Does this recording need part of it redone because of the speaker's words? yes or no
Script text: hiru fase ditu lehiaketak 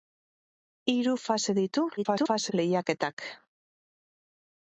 yes